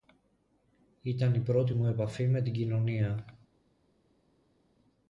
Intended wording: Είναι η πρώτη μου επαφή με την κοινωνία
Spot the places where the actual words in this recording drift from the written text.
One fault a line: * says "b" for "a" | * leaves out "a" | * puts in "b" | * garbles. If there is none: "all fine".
* says "Ήταν" for "Είναι"